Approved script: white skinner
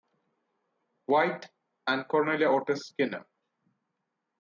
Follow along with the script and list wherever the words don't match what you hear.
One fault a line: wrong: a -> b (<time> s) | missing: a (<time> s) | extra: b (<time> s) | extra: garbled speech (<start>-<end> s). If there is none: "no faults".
extra: and cornelia otis (1.9 s)